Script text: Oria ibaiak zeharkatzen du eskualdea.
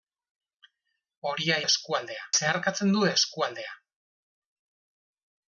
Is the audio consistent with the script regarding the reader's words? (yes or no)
no